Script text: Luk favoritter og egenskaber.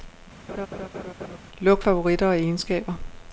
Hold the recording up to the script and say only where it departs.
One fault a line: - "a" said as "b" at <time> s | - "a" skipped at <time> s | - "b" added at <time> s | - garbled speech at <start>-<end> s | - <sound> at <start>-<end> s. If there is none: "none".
- laugh at 0.5-1.4 s